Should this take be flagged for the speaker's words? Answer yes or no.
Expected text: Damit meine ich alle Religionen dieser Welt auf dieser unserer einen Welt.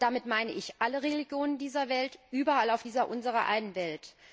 yes